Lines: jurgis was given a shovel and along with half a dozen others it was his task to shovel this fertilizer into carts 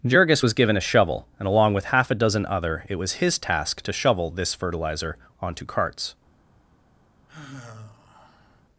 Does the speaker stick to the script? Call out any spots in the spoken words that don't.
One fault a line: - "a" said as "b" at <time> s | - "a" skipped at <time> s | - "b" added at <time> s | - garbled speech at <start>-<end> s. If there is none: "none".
- "others" said as "other" at 2.5 s
- "into" said as "onto" at 5.4 s